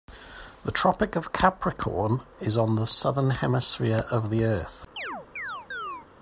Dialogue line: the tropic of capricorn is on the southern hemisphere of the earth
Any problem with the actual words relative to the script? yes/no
no